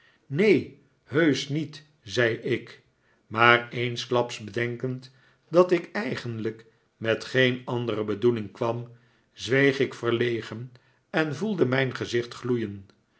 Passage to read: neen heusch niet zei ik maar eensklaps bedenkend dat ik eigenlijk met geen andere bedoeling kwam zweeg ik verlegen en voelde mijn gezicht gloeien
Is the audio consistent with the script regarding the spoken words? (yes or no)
yes